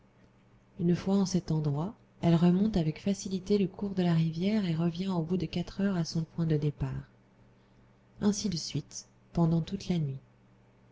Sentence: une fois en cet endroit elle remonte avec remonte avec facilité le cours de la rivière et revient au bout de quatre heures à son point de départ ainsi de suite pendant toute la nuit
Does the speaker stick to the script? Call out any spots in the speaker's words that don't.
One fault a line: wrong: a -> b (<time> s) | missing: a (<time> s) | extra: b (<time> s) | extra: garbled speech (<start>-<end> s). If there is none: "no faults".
missing: remonte avec (3.0 s)